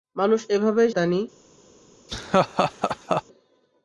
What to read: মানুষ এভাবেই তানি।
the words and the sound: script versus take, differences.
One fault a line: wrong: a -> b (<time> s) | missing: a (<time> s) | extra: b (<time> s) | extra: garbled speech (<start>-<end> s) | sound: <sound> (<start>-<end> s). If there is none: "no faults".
sound: laugh (2.1-3.2 s)